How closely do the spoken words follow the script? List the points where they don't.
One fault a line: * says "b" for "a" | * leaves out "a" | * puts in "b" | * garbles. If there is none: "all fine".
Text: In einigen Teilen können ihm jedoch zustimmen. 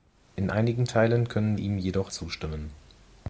all fine